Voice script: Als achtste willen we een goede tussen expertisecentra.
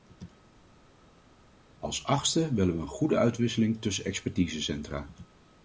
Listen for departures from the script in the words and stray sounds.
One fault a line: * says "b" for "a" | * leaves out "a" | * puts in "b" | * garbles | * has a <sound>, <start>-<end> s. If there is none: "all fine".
* puts in "uitwisseling"